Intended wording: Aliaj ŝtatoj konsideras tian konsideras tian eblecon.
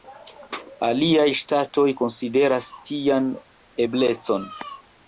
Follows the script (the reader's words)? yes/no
no